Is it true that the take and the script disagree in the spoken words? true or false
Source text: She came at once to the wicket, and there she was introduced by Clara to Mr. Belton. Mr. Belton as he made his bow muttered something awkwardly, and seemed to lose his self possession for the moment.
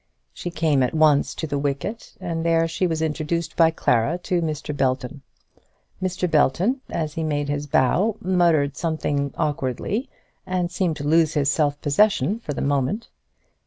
false